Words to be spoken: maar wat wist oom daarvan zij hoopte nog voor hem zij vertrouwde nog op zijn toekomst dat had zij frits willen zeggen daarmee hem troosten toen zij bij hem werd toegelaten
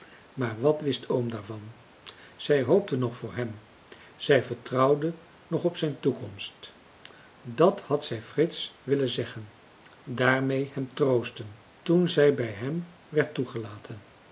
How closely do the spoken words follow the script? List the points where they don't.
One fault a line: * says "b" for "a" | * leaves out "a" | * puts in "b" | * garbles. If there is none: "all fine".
all fine